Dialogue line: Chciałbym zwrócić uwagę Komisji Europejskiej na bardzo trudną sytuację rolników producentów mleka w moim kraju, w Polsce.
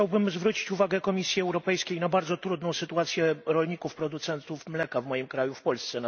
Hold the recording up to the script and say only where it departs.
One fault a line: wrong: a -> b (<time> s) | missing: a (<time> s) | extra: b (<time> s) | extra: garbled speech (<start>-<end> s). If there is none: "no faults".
no faults